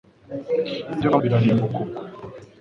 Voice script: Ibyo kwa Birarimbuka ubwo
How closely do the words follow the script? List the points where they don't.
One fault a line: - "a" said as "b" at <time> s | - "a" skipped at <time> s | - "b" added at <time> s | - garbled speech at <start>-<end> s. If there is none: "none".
none